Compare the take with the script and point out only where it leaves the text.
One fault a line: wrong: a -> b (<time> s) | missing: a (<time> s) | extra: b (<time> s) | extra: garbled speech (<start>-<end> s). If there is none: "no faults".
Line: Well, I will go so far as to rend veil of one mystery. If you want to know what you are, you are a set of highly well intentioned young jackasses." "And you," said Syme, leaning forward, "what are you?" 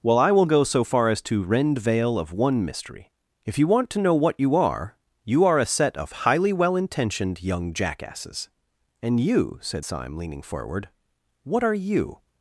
no faults